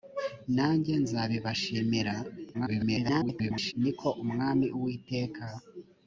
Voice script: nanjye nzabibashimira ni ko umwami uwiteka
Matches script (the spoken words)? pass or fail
fail